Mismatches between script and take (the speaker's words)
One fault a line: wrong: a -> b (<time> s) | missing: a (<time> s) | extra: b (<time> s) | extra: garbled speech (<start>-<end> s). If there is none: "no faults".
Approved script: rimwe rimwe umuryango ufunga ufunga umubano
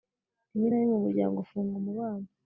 extra: na (0.7 s)
missing: ufunga (1.7 s)